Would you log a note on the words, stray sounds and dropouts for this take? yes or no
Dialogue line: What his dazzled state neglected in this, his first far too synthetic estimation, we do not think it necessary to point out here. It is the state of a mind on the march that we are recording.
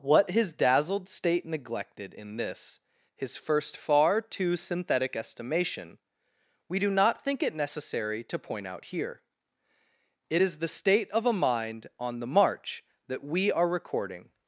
no